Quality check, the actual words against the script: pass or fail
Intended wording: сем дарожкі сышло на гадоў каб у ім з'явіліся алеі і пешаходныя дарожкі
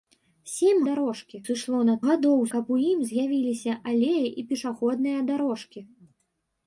pass